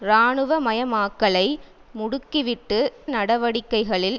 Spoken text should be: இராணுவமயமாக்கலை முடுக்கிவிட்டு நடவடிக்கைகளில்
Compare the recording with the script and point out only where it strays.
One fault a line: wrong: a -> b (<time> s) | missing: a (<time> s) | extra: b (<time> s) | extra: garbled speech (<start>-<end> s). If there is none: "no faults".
no faults